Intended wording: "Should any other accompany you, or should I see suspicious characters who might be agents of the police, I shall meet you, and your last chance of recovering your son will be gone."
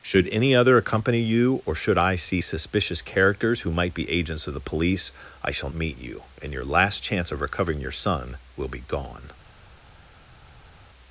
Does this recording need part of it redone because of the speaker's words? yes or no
no